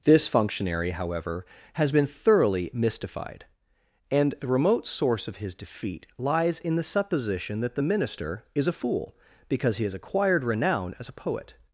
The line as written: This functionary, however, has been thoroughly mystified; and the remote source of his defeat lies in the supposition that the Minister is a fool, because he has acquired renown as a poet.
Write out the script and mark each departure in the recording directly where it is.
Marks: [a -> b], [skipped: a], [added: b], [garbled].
This functionary, however, has been thoroughly mystified; and the remote source of his defeat lies in the supposition that the Minister is a fool, because he has acquired renown as a poet.